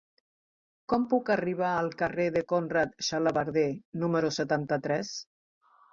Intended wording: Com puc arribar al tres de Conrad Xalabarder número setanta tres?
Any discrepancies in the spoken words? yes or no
yes